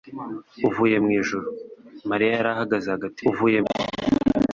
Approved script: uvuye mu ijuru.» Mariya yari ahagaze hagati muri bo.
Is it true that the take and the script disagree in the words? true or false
true